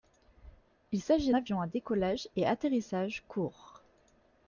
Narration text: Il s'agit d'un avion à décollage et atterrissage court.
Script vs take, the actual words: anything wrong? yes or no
yes